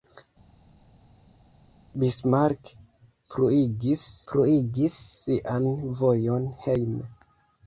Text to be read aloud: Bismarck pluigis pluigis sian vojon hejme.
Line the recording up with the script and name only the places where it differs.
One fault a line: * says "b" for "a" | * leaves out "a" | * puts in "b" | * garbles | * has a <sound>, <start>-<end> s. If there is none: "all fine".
all fine